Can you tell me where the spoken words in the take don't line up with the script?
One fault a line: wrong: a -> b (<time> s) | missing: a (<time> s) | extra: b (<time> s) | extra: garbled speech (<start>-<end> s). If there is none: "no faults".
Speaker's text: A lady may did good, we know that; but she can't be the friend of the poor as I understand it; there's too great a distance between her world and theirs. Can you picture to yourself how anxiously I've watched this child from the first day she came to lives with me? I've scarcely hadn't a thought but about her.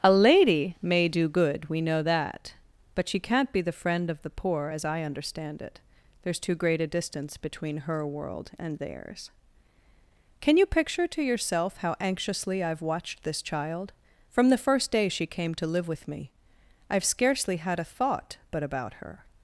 wrong: did -> do (1.1 s)
wrong: lives -> live (15.7 s)
wrong: hadn't -> had (17.6 s)